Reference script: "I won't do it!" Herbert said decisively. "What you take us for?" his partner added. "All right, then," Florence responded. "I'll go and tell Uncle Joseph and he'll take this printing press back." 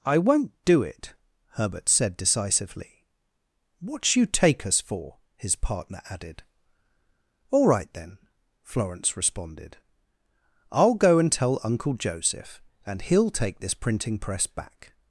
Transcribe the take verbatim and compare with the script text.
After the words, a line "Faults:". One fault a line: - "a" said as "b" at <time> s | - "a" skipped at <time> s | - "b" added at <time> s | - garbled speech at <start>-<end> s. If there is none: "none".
"I won't do it!" Herbert said decisively. "What you take us for?" his partner added. "All right, then," Florence responded. "I'll go and tell Uncle Joseph and he'll take this printing press back."
Faults:
none